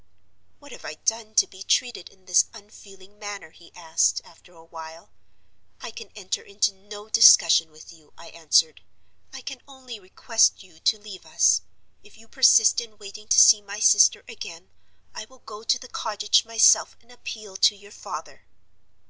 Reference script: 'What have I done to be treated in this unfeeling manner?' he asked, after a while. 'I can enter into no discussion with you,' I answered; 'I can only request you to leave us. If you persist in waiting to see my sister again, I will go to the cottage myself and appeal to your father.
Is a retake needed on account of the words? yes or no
no